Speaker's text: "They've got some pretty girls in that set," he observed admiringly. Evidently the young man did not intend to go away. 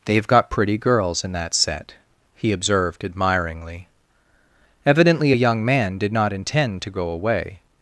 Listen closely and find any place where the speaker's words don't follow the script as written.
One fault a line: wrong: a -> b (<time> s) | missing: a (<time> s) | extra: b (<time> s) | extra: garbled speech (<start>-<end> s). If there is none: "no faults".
missing: some (0.5 s)
wrong: the -> a (5.3 s)